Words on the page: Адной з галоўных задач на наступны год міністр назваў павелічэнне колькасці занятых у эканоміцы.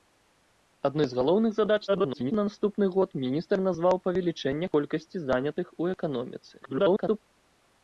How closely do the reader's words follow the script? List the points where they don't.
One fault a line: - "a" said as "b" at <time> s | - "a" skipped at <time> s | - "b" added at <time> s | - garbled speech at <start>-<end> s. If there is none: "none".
- garbled speech at 1.9-2.3 s
- garbled speech at 6.6-7.2 s